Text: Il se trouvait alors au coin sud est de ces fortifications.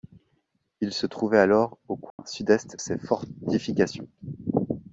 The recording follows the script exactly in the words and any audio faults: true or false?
false